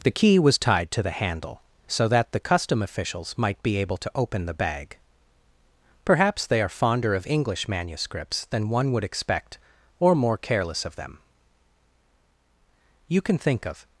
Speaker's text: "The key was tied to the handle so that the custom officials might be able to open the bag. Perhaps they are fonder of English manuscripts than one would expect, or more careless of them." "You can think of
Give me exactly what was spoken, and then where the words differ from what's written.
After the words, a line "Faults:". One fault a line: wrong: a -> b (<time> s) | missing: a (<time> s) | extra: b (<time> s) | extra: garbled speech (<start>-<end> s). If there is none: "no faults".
"The key was tied to the handle so that the custom officials might be able to open the bag. Perhaps they are fonder of English manuscripts than one would expect, or more careless of them." "You can think of
Faults:
no faults